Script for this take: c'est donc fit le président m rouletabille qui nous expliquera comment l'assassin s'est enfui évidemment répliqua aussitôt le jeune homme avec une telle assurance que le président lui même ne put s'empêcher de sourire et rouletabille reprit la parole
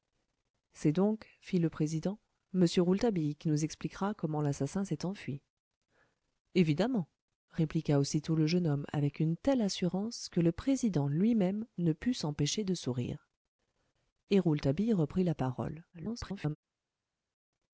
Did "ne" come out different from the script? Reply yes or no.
no